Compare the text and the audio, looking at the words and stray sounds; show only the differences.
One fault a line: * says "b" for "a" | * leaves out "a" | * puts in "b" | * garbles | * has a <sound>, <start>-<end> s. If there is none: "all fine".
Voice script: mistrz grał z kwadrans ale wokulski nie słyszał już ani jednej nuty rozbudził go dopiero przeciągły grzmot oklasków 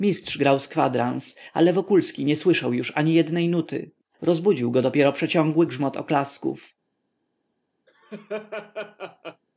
* has a laugh, 7.9-9.4 s